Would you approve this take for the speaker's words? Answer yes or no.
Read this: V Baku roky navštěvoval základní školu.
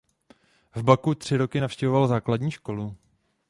no